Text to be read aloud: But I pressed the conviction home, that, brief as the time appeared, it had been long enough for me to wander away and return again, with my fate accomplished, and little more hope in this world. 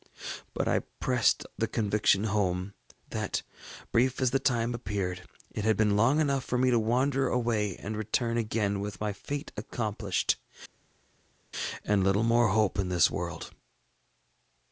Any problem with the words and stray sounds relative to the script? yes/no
no